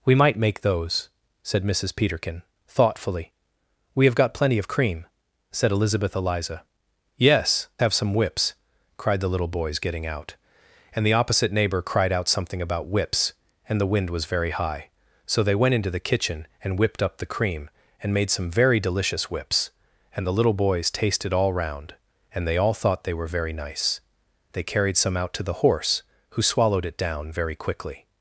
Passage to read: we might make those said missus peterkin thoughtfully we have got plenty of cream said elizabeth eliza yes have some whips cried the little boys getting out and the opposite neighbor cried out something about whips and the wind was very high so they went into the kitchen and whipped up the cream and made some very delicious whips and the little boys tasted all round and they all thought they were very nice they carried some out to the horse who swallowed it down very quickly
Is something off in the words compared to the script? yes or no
no